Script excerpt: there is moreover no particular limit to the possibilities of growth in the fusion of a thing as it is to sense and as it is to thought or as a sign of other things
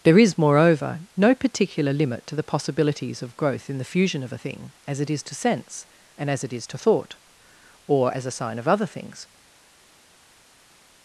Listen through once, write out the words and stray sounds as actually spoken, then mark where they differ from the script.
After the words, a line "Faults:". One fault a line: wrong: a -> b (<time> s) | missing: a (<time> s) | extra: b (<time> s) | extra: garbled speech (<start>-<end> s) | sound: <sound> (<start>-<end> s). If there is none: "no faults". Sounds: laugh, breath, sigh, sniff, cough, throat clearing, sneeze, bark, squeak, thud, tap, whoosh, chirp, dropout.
there is moreover no particular limit to the possibilities of growth in the fusion of a thing as it is to sense and as it is to thought or as a sign of other things
Faults:
no faults